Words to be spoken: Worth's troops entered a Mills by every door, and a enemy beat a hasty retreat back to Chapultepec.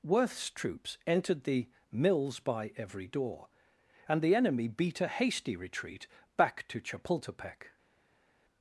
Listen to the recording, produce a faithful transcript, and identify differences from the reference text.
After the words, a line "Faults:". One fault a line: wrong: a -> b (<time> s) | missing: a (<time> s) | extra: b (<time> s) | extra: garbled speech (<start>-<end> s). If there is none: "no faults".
Worth's troops entered the Mills by every door, and the enemy beat a hasty retreat back to Chapultepec.
Faults:
wrong: a -> the (1.4 s)
wrong: a -> the (4.2 s)